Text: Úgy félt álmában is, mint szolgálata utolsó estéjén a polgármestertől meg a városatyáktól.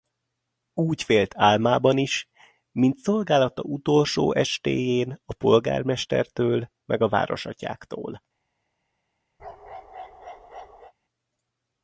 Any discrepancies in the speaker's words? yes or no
no